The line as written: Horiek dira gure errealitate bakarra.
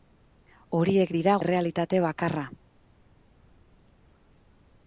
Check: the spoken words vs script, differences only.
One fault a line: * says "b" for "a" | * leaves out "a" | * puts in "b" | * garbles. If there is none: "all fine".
* leaves out "gure"